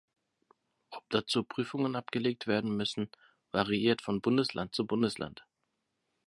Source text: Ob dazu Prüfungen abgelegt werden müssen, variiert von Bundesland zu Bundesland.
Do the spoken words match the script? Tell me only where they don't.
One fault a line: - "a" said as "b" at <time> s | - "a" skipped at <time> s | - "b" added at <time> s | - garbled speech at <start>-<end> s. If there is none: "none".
none